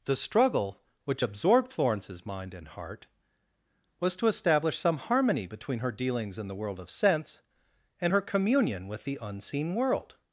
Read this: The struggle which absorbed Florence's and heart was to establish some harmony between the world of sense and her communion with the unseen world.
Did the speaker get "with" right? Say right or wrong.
right